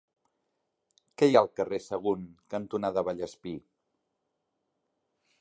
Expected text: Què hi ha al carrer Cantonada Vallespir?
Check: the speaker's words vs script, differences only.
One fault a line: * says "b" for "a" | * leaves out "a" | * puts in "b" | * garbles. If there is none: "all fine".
* puts in "Sagunt"